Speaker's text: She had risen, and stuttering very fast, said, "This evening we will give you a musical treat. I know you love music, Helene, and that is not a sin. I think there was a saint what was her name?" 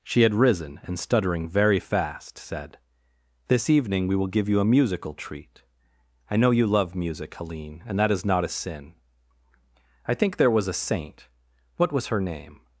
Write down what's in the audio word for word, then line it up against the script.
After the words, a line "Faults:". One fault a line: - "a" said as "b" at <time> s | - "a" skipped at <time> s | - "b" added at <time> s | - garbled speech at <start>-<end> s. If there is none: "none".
She had risen, and stuttering very fast, said, "This evening we will give you a musical treat. I know you love music, Helene, and that is not a sin. I think there was a saint what was her name?"
Faults:
none